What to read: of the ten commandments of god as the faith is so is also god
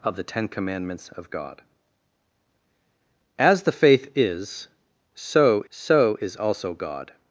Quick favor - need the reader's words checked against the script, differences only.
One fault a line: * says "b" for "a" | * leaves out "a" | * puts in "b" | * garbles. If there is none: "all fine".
* puts in "so"